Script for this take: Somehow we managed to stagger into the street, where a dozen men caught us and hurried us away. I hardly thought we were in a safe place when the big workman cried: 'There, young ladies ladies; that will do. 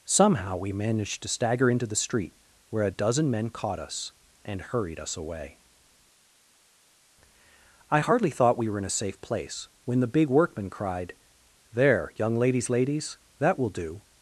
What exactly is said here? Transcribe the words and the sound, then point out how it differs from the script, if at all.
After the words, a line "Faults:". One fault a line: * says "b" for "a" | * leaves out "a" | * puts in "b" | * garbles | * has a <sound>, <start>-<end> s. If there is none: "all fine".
Somehow we managed to stagger into the street, where a dozen men caught us and hurried us away. I hardly thought we were in a safe place when the big workman cried: 'There, young ladies ladies; that will do.
Faults:
all fine